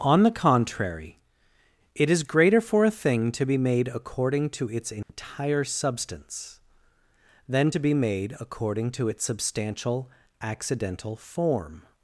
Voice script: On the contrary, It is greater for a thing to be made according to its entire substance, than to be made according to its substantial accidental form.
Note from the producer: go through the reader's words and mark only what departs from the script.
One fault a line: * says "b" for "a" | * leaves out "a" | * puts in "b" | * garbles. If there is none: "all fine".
all fine